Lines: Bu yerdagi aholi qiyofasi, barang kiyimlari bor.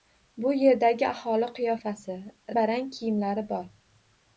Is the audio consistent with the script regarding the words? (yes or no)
yes